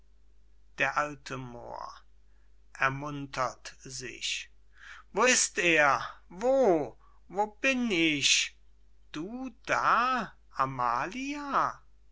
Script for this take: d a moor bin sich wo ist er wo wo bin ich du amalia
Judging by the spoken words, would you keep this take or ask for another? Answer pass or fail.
fail